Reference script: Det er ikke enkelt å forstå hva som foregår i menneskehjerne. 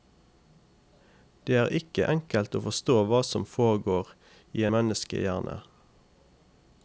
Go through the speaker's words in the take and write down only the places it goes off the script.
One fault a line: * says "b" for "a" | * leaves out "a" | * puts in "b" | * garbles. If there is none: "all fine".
all fine